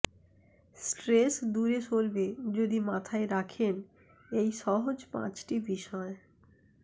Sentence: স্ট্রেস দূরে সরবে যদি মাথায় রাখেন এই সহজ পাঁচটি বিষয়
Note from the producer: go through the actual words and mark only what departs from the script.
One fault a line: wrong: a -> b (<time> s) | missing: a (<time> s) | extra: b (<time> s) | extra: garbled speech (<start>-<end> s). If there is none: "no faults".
no faults